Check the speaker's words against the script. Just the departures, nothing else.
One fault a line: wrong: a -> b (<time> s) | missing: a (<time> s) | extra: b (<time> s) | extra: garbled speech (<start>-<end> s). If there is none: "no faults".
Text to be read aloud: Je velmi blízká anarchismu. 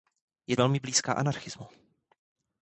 no faults